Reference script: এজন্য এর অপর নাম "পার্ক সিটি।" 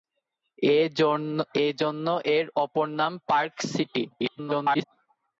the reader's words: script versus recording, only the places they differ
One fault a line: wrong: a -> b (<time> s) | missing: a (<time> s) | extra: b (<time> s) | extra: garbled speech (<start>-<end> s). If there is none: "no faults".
extra: garbled speech (4.1-4.8 s)